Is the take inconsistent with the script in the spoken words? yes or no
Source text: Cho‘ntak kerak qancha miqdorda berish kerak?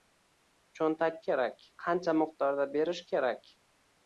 no